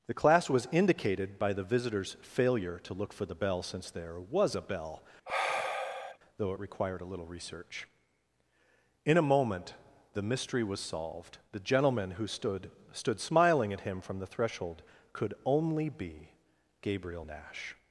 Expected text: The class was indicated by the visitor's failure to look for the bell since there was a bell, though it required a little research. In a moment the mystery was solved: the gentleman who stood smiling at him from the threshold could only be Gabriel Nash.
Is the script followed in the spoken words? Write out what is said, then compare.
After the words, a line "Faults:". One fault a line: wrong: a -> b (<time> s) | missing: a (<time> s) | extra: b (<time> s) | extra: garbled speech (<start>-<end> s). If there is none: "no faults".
The class was indicated by the visitor's failure to look for the bell since there was a bell, though it required a little research. In a moment the mystery was solved: the gentleman who stood stood smiling at him from the threshold could only be Gabriel Nash.
Faults:
extra: stood (12.9 s)